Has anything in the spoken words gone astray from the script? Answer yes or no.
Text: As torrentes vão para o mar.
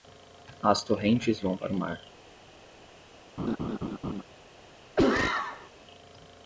no